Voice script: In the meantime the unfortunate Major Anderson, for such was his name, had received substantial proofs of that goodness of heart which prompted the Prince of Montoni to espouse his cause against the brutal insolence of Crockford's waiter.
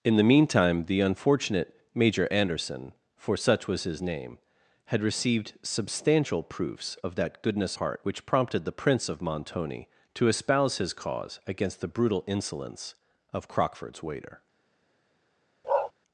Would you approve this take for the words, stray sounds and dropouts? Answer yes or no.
no